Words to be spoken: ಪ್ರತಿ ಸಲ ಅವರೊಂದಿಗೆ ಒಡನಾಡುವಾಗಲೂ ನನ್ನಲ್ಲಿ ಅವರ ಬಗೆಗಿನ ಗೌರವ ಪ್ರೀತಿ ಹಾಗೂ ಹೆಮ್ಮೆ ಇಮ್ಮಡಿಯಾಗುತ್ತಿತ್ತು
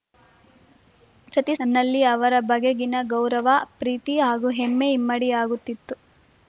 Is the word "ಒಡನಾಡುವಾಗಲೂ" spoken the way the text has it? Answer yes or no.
no